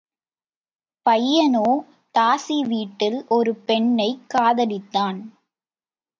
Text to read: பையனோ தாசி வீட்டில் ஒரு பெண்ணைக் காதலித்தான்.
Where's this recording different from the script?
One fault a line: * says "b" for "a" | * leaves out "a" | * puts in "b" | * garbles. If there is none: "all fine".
all fine